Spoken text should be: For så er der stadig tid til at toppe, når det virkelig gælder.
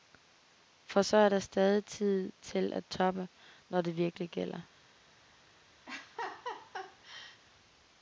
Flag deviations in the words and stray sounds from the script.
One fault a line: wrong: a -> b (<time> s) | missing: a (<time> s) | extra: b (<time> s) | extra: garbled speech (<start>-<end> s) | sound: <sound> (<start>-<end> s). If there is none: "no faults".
sound: laugh (5.9-7.4 s)